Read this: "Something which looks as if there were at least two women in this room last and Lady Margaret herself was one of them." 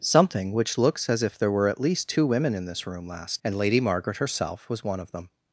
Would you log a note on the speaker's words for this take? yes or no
no